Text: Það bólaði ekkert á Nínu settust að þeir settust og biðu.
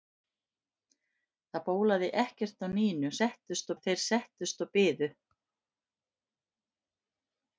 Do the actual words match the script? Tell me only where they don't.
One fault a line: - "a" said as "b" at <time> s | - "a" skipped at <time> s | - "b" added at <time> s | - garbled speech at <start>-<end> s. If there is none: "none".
none